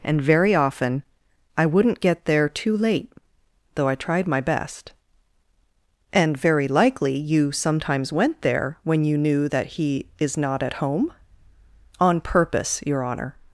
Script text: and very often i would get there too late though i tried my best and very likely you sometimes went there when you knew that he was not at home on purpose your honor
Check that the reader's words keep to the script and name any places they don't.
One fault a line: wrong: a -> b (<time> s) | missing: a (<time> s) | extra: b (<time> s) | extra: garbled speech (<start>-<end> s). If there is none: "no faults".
wrong: would -> wouldn't (1.6 s)
wrong: was -> is (10.2 s)